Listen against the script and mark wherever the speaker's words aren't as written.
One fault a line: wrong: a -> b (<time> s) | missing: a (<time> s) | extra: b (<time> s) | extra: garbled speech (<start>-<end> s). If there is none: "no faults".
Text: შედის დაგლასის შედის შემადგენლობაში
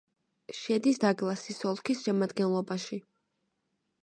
wrong: შედის -> ოლქის (1.7 s)